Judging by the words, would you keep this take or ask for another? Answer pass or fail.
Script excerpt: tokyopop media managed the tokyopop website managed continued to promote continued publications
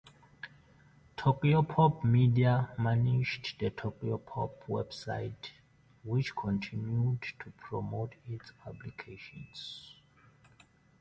fail